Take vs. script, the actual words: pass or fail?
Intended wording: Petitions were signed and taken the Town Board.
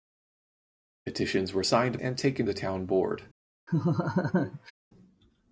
pass